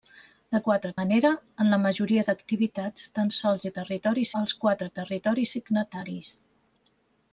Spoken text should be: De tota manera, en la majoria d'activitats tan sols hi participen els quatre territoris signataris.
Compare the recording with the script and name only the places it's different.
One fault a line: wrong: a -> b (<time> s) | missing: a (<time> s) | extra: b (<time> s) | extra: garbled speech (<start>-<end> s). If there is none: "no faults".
wrong: tota -> quatre (0.7 s)
wrong: participen -> territoris (3.8 s)